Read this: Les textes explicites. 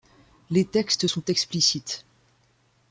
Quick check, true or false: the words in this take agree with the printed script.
false